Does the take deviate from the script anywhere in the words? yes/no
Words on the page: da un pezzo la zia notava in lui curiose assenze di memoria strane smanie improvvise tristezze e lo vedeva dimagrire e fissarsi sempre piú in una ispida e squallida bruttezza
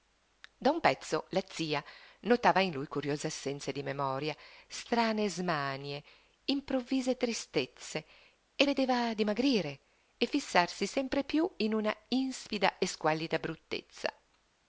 yes